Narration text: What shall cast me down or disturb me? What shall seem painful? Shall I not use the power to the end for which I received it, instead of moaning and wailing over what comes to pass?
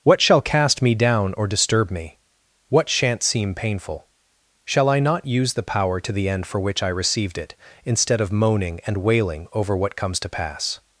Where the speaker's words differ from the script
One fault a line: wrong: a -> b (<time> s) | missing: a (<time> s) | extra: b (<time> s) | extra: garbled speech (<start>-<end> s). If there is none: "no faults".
wrong: shall -> shan't (2.9 s)